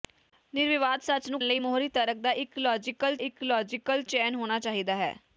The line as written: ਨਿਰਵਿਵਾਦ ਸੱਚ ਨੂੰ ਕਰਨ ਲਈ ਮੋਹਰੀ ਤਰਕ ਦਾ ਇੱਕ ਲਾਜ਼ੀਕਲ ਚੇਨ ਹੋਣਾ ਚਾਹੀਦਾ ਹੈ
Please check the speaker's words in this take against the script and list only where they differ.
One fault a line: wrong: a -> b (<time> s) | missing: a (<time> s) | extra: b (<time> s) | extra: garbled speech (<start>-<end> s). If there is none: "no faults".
missing: ਕਰਨ (1.4 s)
extra: ਇੱਕ ਲਾਜ਼ੀਕਲ (3.2 s)